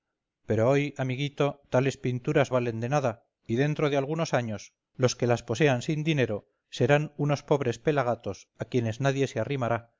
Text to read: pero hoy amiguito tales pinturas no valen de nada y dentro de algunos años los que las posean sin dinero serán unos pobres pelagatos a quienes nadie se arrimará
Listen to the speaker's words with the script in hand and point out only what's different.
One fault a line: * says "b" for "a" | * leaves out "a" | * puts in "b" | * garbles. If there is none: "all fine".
* leaves out "no"